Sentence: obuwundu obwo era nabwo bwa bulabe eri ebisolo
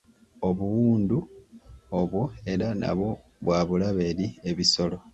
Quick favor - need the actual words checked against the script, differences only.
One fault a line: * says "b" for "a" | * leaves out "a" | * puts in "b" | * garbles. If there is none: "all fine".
all fine